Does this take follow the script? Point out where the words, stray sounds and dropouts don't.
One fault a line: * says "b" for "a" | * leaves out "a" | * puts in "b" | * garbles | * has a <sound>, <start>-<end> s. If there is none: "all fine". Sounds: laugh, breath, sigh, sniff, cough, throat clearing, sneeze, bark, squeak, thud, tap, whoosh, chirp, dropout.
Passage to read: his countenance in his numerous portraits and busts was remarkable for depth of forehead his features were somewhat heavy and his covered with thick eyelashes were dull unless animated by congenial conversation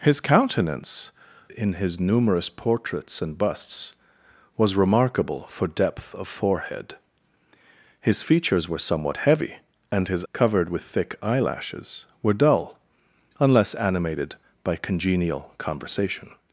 all fine